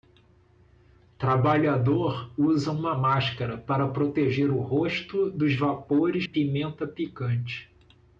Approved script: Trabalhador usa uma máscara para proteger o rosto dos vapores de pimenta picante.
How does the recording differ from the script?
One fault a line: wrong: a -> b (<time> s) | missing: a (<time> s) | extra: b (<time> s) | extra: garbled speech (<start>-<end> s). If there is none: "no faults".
missing: de (6.2 s)